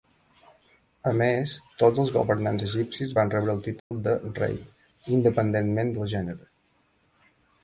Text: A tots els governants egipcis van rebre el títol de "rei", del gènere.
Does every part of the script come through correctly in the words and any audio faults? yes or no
no